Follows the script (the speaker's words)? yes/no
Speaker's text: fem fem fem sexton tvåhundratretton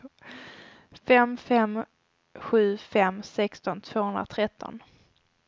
no